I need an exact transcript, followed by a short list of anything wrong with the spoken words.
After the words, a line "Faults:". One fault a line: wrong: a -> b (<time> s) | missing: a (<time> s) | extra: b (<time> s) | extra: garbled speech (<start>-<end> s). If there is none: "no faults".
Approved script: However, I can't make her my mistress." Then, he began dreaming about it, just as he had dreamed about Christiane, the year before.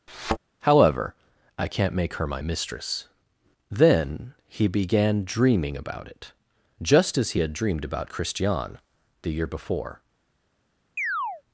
However, I can't make her my mistress." Then, he began dreaming about it, just as he had dreamed about Christiane, the year before.
Faults:
no faults